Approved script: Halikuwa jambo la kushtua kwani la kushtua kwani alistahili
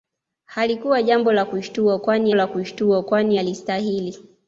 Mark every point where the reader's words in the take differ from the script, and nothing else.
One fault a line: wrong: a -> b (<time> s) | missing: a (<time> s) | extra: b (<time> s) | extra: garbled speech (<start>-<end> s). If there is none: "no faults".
no faults